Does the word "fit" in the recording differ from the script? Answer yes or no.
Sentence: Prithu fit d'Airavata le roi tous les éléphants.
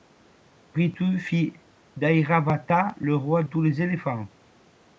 no